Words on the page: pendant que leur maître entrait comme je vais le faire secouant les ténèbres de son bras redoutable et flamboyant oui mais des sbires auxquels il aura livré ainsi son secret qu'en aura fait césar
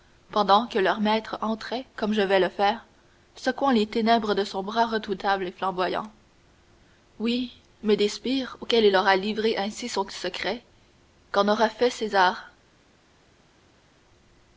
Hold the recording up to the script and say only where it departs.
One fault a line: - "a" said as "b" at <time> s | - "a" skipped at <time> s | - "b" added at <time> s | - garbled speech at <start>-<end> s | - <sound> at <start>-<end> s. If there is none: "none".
none